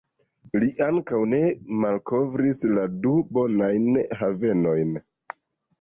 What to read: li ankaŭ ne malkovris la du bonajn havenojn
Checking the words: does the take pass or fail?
pass